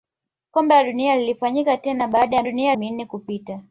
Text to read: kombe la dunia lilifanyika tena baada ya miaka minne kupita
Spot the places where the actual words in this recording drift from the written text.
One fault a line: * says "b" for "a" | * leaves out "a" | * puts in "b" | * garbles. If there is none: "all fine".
* says "dunia" for "miaka"